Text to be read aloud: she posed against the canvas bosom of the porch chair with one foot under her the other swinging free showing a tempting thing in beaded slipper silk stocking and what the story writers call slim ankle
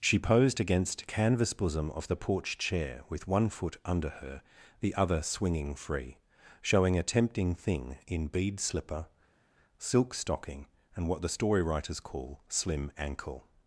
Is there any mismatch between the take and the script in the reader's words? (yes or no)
yes